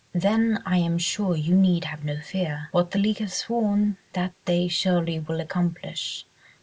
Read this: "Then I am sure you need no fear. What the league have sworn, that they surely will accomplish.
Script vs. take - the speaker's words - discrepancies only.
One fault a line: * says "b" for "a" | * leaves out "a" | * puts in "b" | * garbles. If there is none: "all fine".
* puts in "have"